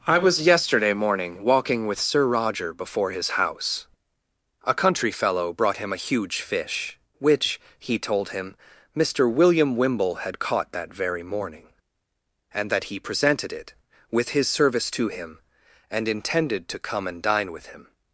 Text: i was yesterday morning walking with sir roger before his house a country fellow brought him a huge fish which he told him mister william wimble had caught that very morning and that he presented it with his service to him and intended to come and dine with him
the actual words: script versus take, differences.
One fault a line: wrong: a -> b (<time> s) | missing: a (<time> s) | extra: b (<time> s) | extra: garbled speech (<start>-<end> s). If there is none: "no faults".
no faults